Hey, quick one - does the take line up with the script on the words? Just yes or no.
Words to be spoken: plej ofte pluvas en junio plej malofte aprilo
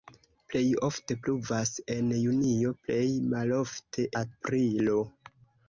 yes